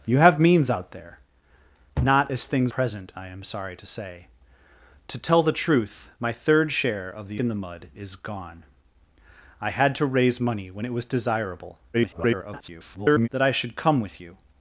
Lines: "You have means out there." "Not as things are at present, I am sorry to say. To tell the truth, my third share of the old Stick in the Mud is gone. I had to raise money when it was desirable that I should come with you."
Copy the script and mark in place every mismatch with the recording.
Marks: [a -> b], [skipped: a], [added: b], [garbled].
"You have means out there." "Not as things [skipped: are at] present, I am sorry to say. To tell the truth, my third share of the [skipped: old Stick] in the Mud is gone. I had to raise money when it was desirable [garbled] that I should come with you."